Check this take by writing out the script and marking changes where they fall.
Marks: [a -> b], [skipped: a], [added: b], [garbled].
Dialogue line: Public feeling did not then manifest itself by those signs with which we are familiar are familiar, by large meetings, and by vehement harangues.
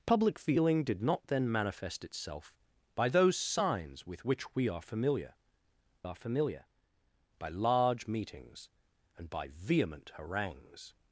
Public feeling did not then manifest itself by those signs with which we are familiar are familiar, by large meetings, and by vehement harangues.